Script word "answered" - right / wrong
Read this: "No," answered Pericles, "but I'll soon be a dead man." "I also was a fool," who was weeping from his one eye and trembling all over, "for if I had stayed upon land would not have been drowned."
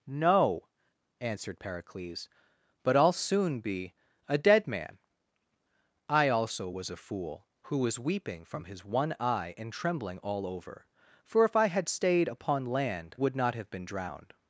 right